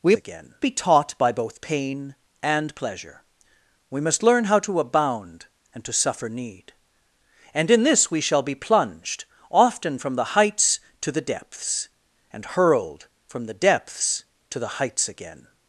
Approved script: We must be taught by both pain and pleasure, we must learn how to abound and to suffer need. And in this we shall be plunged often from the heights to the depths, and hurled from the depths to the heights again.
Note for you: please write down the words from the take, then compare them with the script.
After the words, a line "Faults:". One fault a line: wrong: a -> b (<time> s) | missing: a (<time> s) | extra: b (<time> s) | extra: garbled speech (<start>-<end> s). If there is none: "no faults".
We again be taught by both pain and pleasure, we must learn how to abound and to suffer need. And in this we shall be plunged often from the heights to the depths, and hurled from the depths to the heights again.
Faults:
wrong: must -> again (0.1 s)